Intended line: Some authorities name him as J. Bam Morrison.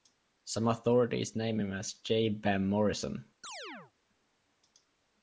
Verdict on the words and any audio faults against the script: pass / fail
fail